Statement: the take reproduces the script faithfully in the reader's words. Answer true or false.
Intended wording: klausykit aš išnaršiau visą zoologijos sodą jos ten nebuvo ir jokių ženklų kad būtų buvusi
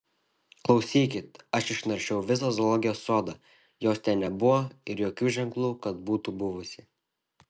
true